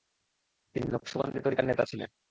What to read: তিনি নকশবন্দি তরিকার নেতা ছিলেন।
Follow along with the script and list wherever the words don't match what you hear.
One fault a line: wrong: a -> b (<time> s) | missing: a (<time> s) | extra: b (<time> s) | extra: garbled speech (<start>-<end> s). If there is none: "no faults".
no faults